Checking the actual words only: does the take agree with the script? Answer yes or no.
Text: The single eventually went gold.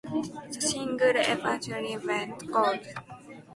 yes